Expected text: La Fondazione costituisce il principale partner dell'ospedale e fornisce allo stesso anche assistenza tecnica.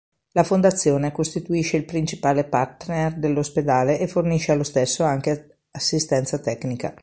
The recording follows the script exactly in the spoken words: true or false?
true